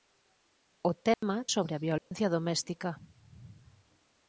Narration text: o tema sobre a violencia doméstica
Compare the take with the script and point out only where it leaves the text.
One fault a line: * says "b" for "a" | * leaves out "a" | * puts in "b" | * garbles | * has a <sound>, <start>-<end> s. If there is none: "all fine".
* has a dropout, 1.1-1.2 s
* has a dropout, 2.0-2.1 s